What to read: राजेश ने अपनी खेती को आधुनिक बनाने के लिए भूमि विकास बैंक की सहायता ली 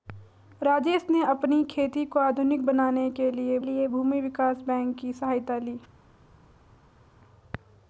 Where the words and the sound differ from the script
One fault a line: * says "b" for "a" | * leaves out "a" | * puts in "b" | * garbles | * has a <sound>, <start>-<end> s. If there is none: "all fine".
* puts in "लिए"